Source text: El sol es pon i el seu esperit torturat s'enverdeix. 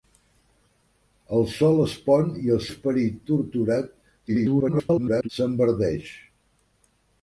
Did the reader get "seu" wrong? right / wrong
wrong